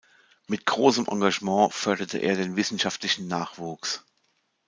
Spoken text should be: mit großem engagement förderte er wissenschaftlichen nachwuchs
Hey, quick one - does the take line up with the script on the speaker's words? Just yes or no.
no